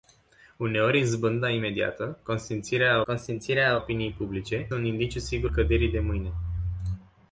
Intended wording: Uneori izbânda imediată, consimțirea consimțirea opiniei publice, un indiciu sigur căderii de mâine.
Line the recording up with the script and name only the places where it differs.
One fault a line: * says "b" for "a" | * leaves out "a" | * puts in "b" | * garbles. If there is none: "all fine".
all fine